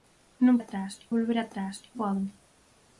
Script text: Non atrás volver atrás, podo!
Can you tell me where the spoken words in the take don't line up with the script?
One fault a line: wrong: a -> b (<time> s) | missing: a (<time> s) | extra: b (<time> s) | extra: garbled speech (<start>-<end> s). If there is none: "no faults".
no faults